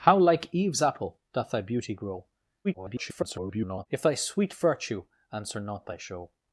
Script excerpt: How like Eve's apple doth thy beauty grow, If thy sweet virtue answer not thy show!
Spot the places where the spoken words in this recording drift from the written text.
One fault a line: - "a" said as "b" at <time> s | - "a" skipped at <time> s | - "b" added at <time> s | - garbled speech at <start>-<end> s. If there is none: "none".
- garbled speech at 2.6-3.9 s